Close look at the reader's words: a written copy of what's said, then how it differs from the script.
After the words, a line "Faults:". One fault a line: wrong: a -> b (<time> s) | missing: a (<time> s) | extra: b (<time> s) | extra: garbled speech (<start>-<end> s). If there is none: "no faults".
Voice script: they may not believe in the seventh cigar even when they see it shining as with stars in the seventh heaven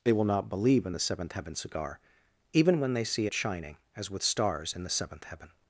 they will not believe in the seventh heaven cigar even when they see it shining as with stars in the seventh heaven
Faults:
wrong: may -> will (0.1 s)
extra: heaven (1.3 s)